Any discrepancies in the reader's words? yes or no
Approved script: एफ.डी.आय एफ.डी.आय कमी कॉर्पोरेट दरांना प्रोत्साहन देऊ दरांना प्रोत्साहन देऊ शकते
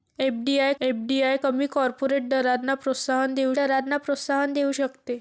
no